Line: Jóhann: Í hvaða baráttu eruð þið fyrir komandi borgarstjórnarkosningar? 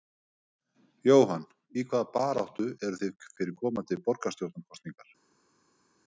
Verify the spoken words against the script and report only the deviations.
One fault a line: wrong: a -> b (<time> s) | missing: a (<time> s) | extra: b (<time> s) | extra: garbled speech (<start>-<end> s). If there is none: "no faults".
no faults